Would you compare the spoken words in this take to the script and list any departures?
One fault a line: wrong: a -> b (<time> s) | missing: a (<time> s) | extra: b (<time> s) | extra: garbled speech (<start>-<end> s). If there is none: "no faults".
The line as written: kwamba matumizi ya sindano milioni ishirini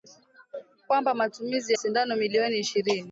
missing: ya (1.7 s)